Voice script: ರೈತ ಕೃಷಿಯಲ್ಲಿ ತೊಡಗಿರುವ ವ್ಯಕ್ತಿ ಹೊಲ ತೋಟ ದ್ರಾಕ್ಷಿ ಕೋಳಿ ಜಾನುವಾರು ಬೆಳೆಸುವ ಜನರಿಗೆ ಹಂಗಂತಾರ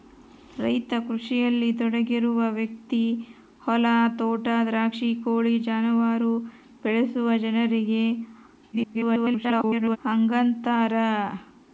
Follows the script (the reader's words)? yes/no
no